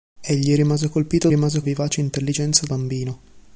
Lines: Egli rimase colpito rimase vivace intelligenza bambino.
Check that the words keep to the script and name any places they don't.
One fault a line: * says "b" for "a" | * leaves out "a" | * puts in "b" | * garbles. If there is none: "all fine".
all fine